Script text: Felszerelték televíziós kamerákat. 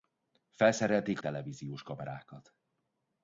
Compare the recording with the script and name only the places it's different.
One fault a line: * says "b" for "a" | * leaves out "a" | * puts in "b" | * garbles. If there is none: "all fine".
all fine